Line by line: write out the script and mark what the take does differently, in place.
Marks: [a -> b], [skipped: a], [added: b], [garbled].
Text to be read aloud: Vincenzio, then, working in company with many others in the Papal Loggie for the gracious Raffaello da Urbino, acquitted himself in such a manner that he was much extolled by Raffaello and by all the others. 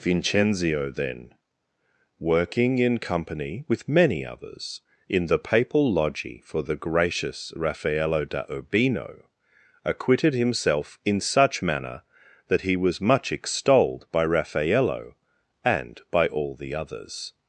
Vincenzio, then, working in company with many others in the Papal Loggie for the gracious Raffaello da Urbino, acquitted himself in such [skipped: a] manner that he was much extolled by Raffaello and by all the others.